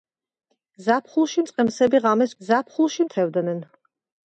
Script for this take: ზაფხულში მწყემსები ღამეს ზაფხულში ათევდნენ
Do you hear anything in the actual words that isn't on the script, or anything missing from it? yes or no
no